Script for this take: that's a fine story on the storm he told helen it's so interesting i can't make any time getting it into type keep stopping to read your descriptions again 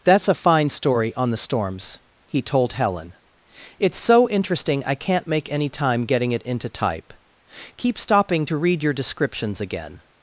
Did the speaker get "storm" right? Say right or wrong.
wrong